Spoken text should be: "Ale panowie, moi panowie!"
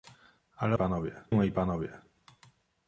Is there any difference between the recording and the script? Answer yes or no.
no